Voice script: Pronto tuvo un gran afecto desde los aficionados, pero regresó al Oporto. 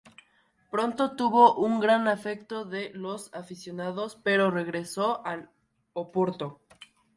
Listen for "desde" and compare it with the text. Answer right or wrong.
wrong